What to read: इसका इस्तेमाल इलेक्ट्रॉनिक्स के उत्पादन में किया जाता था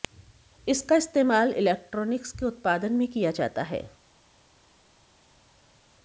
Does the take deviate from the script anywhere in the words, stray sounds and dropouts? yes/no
yes